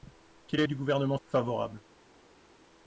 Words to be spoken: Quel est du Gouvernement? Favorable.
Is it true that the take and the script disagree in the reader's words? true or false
false